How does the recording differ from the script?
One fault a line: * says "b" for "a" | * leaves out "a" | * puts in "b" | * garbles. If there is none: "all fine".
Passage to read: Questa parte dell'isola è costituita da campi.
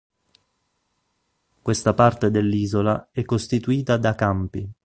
all fine